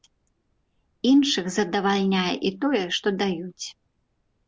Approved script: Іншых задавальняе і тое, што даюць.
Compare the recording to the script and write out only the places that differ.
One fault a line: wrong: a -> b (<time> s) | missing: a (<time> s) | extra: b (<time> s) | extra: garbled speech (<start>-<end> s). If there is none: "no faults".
no faults